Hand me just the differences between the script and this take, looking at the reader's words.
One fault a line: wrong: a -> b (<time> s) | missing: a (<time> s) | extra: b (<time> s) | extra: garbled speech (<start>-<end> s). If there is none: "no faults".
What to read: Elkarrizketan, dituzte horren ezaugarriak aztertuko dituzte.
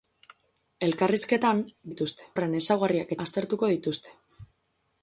no faults